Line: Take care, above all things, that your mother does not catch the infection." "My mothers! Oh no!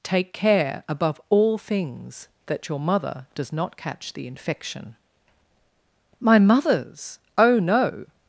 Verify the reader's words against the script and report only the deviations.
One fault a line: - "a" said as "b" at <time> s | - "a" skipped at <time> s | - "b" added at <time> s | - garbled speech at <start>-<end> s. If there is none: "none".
none